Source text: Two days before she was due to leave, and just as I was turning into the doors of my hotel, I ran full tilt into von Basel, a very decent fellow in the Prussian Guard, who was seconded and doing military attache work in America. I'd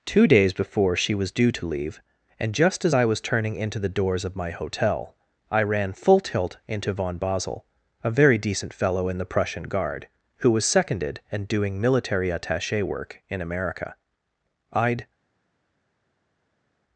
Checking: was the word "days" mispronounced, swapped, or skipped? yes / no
no